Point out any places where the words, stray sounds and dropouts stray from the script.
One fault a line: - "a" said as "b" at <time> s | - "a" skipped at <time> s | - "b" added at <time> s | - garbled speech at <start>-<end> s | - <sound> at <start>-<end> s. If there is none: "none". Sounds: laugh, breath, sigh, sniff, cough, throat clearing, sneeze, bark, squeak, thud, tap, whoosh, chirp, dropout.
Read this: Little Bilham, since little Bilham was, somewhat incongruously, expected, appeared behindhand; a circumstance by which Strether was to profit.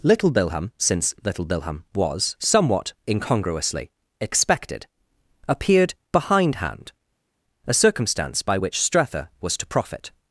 none